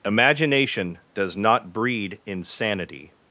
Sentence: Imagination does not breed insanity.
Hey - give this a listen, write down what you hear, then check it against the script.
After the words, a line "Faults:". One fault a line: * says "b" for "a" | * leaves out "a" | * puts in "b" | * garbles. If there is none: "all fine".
Imagination does not breed insanity.
Faults:
all fine